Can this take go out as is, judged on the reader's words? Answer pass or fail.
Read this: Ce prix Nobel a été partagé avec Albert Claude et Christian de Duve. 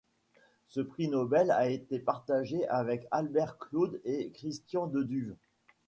pass